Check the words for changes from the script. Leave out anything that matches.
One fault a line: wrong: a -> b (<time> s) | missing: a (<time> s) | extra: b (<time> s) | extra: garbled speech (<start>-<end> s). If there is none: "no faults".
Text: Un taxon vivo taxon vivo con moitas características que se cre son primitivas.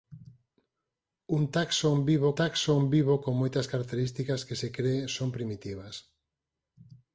no faults